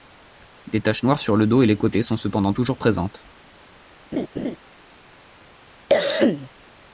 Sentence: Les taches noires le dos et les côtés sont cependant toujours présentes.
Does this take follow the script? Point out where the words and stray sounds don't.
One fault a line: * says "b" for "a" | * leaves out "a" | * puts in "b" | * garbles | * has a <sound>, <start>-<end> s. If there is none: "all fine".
* puts in "sur"
* has a laugh, 4.1-4.6 s
* has a cough, 5.9-6.5 s